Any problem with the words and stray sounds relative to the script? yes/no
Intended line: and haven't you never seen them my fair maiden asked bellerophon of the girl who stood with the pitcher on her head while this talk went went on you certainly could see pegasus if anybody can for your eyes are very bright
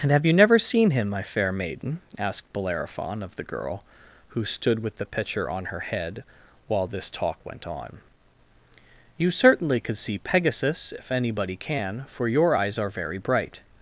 yes